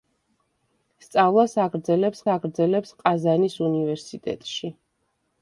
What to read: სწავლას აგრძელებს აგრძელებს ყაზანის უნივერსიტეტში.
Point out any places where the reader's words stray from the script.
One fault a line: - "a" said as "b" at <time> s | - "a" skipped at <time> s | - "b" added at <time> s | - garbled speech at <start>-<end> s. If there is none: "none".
none